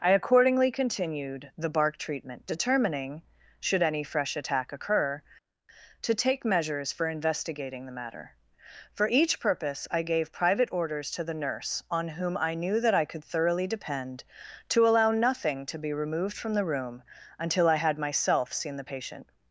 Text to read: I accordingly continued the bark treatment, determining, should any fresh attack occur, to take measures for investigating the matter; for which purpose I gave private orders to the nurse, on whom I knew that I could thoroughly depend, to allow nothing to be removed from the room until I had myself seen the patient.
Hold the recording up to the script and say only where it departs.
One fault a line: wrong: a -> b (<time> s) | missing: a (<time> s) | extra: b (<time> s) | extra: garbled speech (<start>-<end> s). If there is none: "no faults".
wrong: which -> each (9.1 s)